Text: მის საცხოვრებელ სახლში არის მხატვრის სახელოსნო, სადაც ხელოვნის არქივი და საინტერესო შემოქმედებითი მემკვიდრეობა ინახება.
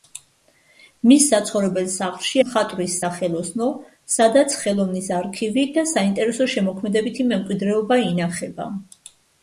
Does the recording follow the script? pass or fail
fail